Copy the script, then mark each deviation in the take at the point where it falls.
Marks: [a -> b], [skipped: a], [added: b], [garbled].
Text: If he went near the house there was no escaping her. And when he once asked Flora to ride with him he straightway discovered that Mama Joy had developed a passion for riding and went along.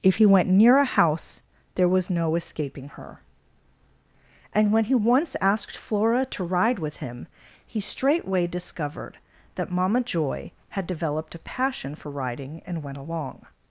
If he went near [the -> a] house there was no escaping her. And when he once asked Flora to ride with him he straightway discovered that Mama Joy had developed a passion for riding and went along.